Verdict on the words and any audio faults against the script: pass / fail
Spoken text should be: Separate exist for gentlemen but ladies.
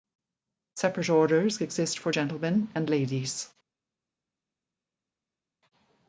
fail